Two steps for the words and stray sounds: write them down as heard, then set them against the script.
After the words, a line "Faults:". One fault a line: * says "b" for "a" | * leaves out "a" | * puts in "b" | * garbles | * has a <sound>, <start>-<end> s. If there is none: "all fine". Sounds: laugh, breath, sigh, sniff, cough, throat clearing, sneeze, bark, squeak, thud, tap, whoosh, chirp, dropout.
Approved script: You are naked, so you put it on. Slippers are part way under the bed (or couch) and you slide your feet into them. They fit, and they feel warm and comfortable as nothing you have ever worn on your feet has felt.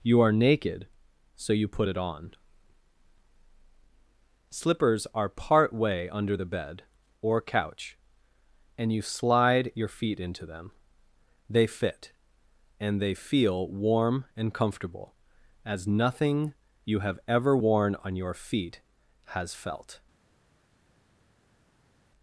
You are naked, so you put it on. Slippers are part way under the bed (or couch) and you slide your feet into them. They fit, and they feel warm and comfortable as nothing you have ever worn on your feet has felt.
Faults:
all fine